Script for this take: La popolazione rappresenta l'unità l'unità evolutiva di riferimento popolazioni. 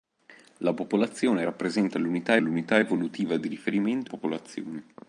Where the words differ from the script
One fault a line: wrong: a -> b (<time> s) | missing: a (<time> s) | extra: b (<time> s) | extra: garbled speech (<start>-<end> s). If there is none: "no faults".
no faults